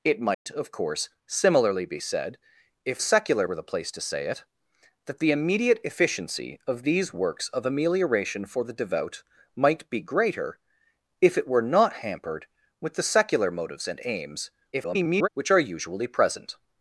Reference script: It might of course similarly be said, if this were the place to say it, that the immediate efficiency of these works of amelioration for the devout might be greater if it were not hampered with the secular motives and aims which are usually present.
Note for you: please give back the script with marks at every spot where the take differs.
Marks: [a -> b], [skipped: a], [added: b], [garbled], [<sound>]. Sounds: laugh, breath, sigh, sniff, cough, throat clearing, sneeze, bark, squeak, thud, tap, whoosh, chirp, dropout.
It might [dropout] of course similarly be said, if [this -> secular] were the place to say it, that the immediate efficiency of these works of amelioration for the devout might be greater if it were not hampered with the secular motives and aims [garbled] which are usually present.